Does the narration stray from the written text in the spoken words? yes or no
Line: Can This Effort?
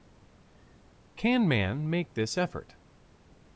yes